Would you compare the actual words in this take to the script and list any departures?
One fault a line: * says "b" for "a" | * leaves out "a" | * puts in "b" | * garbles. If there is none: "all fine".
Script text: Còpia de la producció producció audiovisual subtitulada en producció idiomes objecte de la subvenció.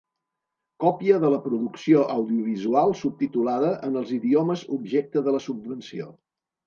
* leaves out "producció"
* says "els" for "producció"